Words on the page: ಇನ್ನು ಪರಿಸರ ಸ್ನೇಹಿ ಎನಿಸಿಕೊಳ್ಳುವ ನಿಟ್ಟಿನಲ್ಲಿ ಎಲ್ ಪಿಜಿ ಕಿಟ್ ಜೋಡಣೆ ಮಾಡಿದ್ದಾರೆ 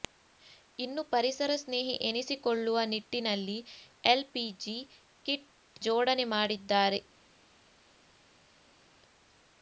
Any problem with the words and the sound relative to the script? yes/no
no